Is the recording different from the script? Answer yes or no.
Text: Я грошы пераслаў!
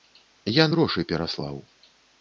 no